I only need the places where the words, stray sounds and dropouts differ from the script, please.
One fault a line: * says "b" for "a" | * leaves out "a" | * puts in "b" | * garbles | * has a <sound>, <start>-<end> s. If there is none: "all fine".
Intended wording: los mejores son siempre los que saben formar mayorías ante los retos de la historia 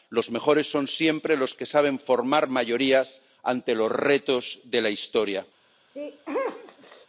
* has a sneeze, 5.9-7.1 s